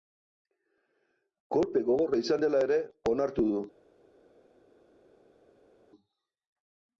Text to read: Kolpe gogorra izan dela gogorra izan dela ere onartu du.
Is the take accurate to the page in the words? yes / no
no